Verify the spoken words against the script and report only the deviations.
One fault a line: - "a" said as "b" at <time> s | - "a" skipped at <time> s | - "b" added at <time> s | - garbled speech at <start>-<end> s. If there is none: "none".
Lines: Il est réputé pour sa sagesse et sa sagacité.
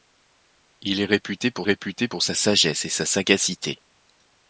- "réputé pour" added at 1.6 s